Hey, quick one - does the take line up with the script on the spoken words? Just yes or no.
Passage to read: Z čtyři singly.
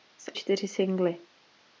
yes